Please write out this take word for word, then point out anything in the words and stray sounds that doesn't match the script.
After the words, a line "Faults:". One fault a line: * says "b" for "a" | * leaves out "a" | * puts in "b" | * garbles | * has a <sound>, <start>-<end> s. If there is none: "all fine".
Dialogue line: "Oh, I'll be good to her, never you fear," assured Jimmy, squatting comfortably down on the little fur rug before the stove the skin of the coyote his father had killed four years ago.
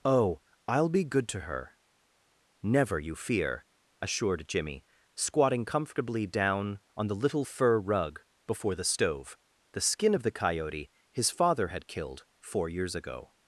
"Oh, I'll be good to her, never you fear," assured Jimmy, squatting comfortably down on the little fur rug before the stove the skin of the coyote his father had killed four years ago.
Faults:
all fine